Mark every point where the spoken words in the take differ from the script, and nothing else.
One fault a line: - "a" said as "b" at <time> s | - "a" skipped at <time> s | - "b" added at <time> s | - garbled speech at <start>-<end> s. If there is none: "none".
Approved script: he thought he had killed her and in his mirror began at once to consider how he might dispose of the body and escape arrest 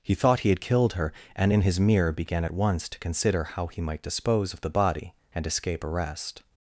none